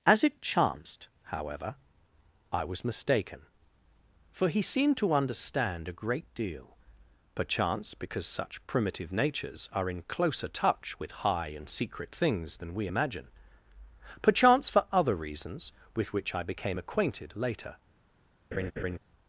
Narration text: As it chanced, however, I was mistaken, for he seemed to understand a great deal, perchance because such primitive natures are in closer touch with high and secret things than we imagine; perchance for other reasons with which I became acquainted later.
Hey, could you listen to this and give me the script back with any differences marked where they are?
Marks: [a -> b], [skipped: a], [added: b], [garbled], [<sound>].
As it chanced, however, I was mistaken, for he seemed to understand a great deal, perchance because such primitive natures are in closer touch with high and secret things than we imagine; perchance for other reasons with which I became acquainted later. [laugh]